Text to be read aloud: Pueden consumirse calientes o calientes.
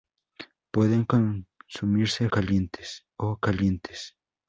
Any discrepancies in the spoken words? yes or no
no